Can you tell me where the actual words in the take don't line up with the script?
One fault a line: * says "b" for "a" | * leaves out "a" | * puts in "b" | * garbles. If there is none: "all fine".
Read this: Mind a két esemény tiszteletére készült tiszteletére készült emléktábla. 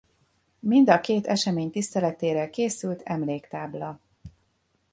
* leaves out "tiszteletére készült"